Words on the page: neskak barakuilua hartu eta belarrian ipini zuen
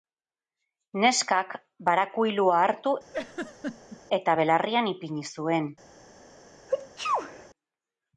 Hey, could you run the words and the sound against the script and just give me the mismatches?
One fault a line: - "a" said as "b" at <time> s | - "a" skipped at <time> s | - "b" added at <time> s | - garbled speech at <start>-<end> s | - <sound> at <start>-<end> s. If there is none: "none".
- laugh at 3.1-4.0 s
- sneeze at 6.7-7.5 s